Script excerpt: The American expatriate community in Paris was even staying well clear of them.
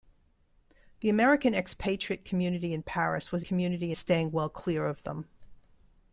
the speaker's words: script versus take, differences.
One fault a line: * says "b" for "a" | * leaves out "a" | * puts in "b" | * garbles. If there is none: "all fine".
* says "community" for "even"